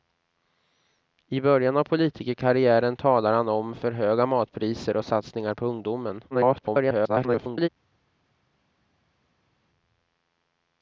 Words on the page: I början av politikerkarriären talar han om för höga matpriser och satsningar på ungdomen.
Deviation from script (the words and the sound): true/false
true